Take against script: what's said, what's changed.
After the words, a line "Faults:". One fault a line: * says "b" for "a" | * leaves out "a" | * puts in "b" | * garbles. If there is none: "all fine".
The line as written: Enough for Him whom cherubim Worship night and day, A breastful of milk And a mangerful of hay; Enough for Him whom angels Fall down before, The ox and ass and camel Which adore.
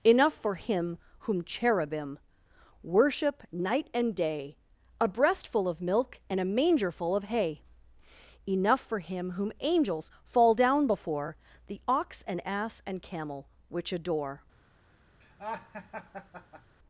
Enough for Him whom cherubim Worship night and day, A breastful of milk And a mangerful of hay; Enough for Him whom angels Fall down before, The ox and ass and camel Which adore.
Faults:
all fine